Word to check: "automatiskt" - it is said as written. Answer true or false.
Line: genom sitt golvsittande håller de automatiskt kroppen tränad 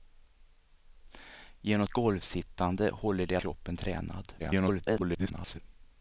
false